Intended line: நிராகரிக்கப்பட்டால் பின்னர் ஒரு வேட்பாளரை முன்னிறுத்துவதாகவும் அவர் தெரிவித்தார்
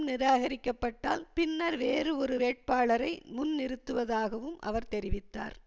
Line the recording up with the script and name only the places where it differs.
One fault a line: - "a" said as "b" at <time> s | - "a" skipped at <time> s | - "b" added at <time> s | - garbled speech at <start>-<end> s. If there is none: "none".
- "வேறு" added at 1.8 s